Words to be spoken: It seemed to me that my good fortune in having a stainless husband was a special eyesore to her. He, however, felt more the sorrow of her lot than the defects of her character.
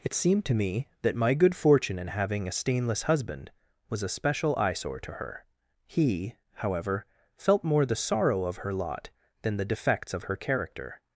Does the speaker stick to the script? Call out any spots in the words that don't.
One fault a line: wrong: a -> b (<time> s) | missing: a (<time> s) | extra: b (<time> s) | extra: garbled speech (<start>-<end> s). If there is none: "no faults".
no faults